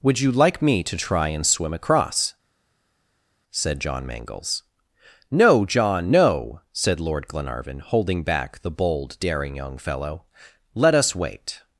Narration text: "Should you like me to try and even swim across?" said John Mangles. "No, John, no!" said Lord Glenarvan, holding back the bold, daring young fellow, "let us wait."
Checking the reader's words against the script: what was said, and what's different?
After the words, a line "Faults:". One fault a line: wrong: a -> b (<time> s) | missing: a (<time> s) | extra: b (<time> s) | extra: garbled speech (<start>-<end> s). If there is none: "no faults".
"Would you like me to try and swim across?" said John Mangles. "No, John, no!" said Lord Glenarvan, holding back the bold, daring young fellow, "let us wait."
Faults:
wrong: Should -> Would (0.0 s)
missing: even (1.4 s)